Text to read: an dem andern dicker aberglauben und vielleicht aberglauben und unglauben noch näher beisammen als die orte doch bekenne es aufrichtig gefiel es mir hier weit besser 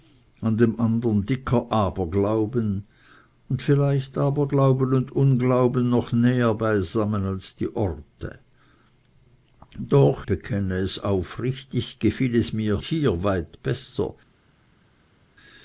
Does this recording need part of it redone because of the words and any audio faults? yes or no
no